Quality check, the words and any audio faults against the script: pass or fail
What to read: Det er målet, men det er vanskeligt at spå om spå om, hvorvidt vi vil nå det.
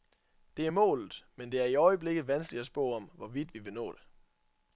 fail